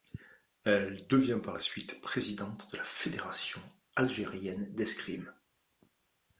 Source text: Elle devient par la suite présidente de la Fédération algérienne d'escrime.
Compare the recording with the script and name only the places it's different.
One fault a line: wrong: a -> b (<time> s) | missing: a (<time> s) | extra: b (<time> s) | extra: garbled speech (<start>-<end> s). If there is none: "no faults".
no faults